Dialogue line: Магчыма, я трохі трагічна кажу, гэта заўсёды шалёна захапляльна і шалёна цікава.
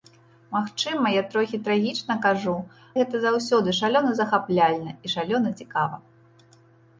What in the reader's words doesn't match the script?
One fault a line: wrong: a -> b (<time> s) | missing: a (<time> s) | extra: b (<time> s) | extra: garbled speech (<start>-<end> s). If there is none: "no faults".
no faults